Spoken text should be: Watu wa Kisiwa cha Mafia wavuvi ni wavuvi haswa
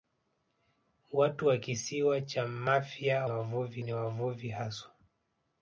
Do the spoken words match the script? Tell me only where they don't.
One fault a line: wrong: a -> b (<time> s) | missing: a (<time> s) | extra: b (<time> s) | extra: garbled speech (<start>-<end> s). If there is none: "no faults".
no faults